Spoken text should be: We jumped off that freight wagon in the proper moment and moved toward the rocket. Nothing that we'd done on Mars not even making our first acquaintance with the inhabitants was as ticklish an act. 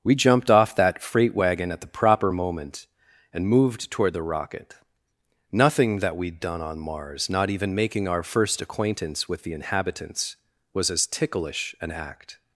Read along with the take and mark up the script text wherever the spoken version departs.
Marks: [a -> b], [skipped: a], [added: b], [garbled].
We jumped off that freight wagon [in -> at] the proper moment and moved toward the rocket. Nothing that we'd done on Mars not even making our first acquaintance with the inhabitants was as ticklish an act.